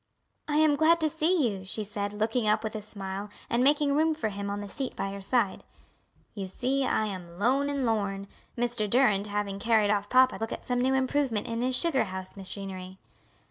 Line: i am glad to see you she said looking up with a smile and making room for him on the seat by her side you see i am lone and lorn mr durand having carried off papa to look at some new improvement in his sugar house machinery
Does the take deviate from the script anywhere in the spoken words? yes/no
yes